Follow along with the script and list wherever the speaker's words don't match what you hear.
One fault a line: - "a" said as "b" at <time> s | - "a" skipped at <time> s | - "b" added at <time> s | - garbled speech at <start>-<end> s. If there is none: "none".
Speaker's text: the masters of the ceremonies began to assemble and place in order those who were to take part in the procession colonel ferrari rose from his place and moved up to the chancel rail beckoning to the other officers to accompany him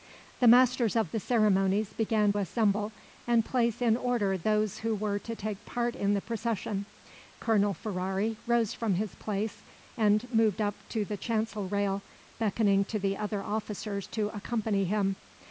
- "to" skipped at 2.3 s